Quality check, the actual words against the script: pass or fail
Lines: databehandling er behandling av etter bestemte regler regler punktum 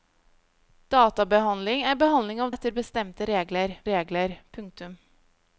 pass